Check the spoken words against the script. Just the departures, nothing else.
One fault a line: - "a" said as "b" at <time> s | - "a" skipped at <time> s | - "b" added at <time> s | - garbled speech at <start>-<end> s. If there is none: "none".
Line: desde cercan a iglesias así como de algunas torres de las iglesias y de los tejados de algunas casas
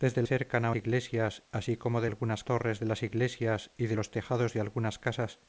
none